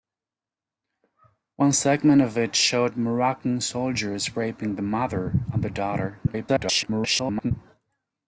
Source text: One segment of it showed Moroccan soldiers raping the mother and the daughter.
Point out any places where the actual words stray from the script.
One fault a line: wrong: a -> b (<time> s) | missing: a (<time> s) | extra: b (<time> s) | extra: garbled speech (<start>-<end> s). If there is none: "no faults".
extra: garbled speech (6.3-7.5 s)